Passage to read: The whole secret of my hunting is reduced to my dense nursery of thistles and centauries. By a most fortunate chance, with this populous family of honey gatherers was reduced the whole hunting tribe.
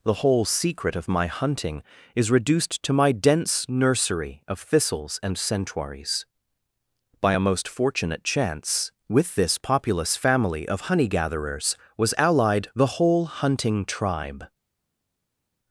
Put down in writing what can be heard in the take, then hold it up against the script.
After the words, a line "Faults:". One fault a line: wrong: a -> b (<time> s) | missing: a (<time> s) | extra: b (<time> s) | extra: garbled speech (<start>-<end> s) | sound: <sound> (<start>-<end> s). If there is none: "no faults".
The whole secret of my hunting is reduced to my dense nursery of thistles and centauries. By a most fortunate chance, with this populous family of honey gatherers was allied the whole hunting tribe.
Faults:
wrong: reduced -> allied (12.2 s)